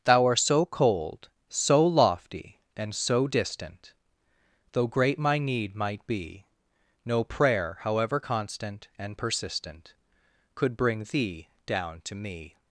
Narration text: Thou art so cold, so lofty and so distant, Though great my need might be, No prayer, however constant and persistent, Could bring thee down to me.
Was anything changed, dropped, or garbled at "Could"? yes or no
no